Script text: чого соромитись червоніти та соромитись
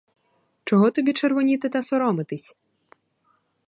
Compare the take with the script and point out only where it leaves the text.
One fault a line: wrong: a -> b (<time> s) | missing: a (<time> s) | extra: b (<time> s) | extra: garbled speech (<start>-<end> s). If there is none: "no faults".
wrong: соромитись -> тобі (0.9 s)